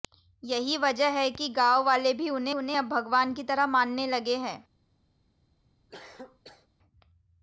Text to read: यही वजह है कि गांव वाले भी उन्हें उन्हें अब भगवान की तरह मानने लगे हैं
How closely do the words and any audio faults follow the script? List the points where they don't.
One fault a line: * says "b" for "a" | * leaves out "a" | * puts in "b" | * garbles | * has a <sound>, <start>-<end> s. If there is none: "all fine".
* has a cough, 5.9-6.7 s